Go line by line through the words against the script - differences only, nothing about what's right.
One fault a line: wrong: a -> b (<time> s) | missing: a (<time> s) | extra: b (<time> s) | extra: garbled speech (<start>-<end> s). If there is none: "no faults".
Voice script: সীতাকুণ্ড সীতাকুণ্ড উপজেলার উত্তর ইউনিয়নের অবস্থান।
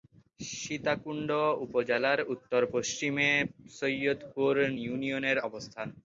missing: সীতাকুণ্ড (1.3 s)
extra: পশ্চিমে সৈয়দপুর (2.7 s)